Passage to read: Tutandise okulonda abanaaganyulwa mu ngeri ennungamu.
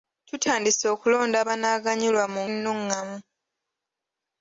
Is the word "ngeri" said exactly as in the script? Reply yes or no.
no